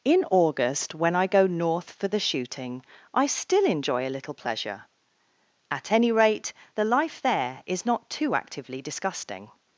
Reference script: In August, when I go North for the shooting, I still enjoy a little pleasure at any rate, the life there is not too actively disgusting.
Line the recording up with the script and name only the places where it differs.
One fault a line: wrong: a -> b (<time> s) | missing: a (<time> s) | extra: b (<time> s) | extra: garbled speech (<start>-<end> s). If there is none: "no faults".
no faults